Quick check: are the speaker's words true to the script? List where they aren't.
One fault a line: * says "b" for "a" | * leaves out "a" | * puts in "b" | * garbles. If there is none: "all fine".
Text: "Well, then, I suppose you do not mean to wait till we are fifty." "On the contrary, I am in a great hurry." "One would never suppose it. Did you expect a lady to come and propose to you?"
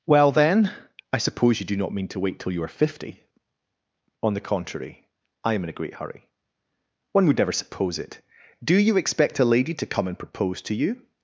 * says "you" for "we"
* says "Do" for "Did"